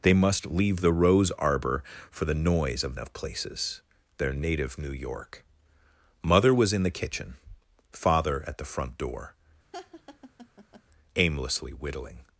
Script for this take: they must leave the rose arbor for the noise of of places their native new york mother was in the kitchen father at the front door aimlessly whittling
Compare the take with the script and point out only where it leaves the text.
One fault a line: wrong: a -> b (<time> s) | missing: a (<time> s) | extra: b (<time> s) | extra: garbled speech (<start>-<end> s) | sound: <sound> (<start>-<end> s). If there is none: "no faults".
sound: laugh (9.7-10.8 s)